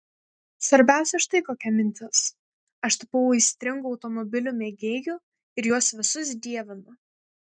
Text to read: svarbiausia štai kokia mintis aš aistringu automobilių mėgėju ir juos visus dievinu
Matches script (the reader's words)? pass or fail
fail